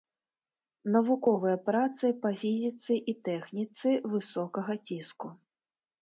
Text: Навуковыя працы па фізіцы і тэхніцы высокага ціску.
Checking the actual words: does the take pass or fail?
pass